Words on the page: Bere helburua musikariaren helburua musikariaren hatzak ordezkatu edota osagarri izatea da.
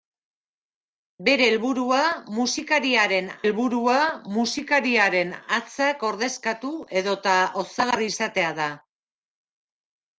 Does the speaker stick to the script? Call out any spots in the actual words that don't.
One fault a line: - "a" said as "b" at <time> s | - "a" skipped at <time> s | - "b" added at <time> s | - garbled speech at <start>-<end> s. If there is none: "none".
none